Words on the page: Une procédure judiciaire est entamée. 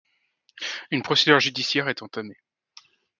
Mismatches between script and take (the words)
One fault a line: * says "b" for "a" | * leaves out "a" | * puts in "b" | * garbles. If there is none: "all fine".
all fine